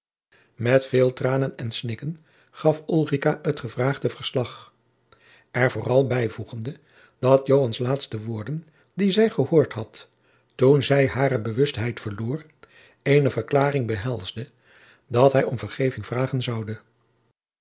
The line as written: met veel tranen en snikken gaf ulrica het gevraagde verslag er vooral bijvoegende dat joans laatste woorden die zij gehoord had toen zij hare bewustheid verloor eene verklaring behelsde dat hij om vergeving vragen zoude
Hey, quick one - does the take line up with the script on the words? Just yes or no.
yes